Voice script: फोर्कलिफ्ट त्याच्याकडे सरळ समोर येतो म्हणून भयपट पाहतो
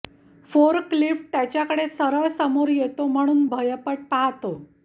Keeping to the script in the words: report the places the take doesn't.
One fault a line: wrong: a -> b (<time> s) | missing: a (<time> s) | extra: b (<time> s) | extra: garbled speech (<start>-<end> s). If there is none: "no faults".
no faults